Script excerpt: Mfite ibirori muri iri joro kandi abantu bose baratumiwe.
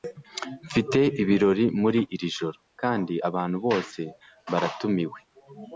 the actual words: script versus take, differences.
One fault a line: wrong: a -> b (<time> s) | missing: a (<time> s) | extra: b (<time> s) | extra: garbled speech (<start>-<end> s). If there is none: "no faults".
no faults